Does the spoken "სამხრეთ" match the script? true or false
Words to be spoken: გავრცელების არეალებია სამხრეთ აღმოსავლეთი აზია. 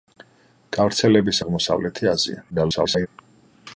false